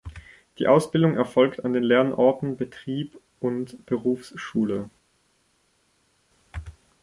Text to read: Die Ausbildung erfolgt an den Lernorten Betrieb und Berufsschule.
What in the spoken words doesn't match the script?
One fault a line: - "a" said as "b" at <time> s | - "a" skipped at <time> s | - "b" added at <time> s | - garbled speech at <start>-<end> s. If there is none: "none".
none